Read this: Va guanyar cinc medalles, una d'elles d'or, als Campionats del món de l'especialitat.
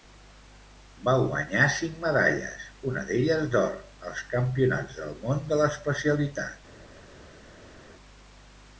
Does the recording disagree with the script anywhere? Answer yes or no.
no